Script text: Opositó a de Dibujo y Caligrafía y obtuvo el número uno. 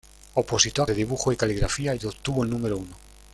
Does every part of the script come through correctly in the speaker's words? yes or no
yes